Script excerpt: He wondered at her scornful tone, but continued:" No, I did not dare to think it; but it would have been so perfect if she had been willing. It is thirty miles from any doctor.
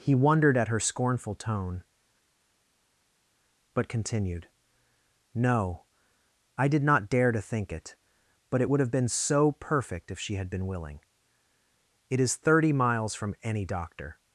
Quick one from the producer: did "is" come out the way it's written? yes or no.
yes